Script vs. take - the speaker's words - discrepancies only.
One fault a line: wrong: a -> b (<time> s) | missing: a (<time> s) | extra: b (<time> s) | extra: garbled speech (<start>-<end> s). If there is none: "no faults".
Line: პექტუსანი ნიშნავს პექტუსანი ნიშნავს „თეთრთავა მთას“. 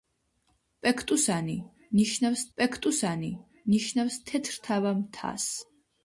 no faults